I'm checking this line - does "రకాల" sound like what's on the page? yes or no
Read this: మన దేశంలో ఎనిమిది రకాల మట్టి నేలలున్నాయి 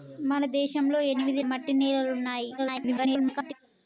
no